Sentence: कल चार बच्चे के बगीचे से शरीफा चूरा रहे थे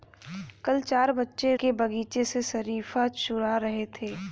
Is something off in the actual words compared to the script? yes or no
no